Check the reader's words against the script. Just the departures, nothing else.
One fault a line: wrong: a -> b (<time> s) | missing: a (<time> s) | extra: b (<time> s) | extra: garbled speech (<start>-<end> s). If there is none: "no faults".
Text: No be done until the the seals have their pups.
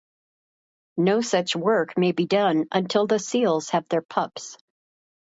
extra: such work may (1.2 s)
missing: the (3.2 s)